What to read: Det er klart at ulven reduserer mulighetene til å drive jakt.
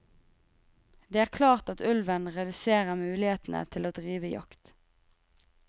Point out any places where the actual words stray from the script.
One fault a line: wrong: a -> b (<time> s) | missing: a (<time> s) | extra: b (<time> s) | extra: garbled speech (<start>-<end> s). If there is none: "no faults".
no faults